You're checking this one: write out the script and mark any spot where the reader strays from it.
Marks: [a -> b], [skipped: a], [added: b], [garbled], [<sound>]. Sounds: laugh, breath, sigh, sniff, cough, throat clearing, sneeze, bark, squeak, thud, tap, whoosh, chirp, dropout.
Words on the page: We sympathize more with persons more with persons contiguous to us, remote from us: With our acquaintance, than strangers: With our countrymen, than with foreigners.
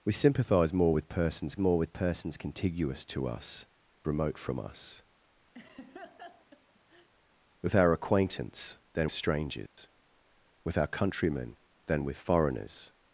We sympathize more with persons more with persons contiguous to us, remote from us: [laugh] With our acquaintance, than strangers: [dropout] With our countrymen, than with foreigners.